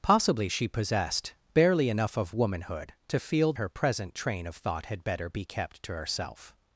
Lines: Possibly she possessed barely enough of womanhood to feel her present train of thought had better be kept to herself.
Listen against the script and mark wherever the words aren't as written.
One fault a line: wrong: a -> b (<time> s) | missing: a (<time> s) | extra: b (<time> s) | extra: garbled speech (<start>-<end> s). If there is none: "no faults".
no faults